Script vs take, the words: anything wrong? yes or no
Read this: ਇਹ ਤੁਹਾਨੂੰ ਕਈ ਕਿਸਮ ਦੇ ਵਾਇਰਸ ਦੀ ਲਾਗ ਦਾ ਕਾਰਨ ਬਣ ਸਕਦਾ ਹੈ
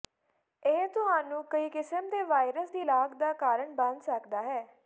no